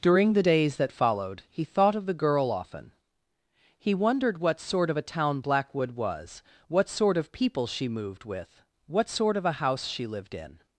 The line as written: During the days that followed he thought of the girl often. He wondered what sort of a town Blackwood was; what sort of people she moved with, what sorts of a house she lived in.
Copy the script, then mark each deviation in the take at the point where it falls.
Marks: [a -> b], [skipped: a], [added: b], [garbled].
During the days that followed he thought of the girl often. He wondered what sort of a town Blackwood was; what sort of people she moved with, what [sorts -> sort] of a house she lived in.